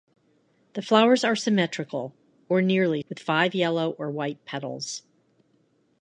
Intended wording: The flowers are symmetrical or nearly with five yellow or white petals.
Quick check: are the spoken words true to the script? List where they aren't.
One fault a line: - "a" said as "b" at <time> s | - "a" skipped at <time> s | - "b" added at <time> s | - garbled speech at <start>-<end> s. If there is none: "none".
none